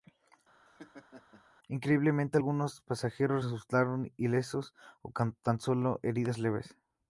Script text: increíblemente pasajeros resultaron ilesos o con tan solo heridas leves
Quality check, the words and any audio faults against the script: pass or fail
fail